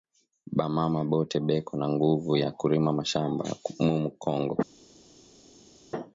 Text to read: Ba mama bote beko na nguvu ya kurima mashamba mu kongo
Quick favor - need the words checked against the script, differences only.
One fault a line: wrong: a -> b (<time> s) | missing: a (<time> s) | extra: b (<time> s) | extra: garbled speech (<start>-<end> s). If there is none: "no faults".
no faults